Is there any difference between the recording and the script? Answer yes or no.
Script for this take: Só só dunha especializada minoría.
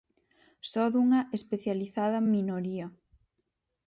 yes